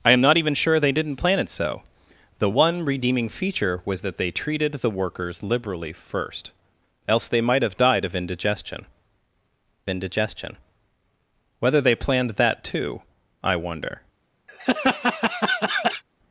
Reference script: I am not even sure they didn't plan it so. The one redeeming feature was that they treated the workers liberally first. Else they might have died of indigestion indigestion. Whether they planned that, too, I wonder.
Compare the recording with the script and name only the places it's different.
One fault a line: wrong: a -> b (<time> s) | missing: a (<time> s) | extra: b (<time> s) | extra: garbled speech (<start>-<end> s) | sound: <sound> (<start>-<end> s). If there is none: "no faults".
sound: laugh (14.5-16.0 s)